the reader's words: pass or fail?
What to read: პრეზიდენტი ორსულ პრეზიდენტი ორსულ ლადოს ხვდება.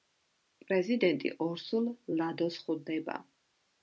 fail